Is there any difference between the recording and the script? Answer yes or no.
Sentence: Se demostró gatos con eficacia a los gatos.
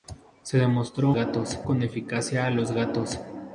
no